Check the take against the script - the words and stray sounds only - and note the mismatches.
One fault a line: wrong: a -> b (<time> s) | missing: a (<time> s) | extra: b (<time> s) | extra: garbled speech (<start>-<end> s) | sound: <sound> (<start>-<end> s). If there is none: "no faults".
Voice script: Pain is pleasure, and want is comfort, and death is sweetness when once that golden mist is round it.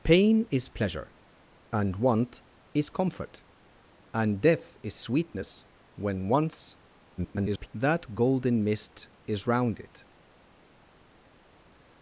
extra: garbled speech (7.2-7.7 s)